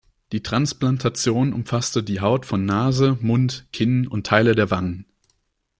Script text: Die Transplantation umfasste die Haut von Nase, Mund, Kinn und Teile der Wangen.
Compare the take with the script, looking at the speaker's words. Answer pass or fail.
pass